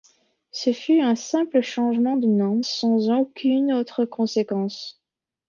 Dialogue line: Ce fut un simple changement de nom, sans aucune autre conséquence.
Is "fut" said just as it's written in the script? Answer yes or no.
yes